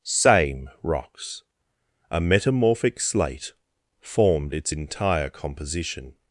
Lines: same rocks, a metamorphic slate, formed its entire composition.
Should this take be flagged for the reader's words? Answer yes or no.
no